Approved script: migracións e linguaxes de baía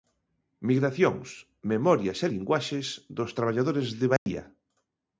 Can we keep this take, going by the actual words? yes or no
no